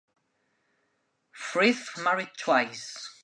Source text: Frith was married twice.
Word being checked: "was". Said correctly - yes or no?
no